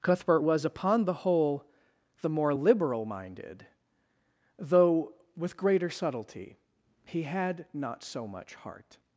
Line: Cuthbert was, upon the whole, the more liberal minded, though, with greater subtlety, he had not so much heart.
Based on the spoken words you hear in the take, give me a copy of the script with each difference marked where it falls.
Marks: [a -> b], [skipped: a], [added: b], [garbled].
Cuthbert was, upon the whole, the more liberal minded, though, with greater subtlety, he had not so much heart.